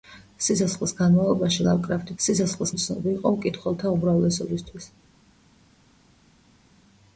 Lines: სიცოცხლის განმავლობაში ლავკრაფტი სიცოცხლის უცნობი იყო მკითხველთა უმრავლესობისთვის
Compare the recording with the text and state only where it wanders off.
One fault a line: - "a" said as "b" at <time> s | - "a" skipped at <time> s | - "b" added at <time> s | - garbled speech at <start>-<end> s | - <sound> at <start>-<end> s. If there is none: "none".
none